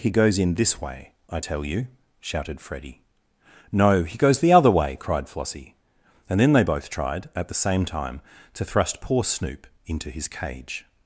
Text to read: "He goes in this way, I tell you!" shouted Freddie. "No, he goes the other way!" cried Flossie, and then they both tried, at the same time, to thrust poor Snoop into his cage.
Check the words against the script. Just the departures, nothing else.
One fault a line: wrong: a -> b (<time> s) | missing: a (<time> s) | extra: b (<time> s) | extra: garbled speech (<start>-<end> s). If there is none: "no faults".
no faults